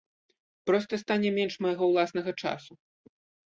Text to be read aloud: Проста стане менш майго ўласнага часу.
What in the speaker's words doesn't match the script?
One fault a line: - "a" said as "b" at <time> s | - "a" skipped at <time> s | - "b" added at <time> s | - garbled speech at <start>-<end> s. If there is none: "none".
none